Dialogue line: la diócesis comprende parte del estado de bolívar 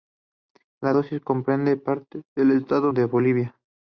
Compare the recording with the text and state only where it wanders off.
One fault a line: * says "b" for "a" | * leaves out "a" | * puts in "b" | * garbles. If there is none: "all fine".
all fine